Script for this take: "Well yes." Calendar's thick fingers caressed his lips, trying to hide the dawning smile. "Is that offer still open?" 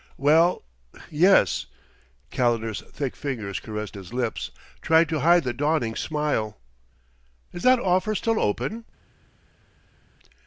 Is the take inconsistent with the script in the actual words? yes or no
no